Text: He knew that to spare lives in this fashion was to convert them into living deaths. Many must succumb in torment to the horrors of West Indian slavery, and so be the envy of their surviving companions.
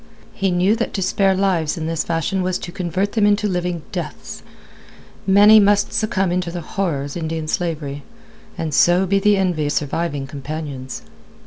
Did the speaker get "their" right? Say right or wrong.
wrong